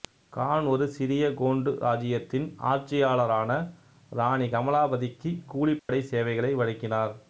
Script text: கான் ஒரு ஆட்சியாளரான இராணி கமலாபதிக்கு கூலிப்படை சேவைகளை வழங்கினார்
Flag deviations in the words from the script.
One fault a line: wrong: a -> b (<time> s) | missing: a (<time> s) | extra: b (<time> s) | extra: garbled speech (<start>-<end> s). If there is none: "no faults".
extra: சிறிய கோண்டு இராச்சியத்தின் (0.9 s)